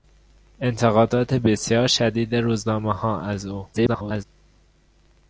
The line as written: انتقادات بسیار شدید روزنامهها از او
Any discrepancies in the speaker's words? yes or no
yes